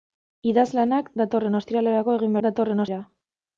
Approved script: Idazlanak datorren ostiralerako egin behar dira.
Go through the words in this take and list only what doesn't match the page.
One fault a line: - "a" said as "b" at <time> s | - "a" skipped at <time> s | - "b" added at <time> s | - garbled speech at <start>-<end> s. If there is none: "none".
- "behar" said as "datorren" at 2.5 s